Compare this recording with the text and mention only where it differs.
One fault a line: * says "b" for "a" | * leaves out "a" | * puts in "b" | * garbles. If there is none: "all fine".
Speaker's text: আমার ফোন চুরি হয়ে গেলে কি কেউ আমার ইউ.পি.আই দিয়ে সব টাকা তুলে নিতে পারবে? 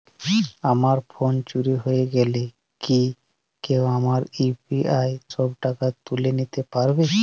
* leaves out "দিয়ে"